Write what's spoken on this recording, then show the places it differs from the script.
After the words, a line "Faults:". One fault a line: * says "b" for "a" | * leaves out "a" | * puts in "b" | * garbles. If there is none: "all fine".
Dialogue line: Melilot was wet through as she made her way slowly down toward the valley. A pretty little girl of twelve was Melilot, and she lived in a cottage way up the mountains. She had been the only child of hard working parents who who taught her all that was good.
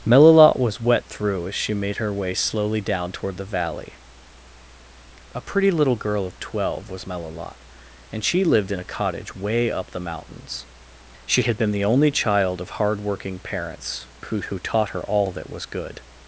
Melilot was wet through as she made her way slowly down toward the valley. A pretty little girl of twelve was Melilot, and she lived in a cottage way up the mountains. She had been the only child of hard working parents who who taught her all that was good.
Faults:
all fine